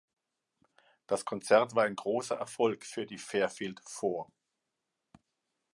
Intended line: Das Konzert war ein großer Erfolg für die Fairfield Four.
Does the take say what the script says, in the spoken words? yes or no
yes